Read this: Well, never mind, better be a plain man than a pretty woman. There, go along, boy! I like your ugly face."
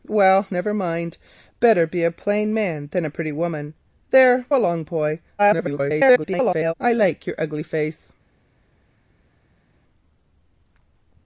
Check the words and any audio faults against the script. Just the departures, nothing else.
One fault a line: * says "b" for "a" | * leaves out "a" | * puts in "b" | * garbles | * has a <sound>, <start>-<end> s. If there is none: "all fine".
* leaves out "go"
* garbles